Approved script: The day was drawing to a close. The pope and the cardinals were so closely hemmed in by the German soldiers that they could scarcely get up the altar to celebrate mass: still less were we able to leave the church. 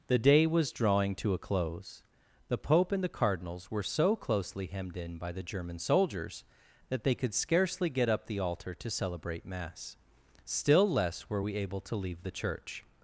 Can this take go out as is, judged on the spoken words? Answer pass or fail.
pass